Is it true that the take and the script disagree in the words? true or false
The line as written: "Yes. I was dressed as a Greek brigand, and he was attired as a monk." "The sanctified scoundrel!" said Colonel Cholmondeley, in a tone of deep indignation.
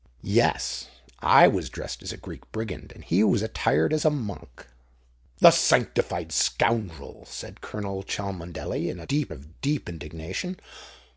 true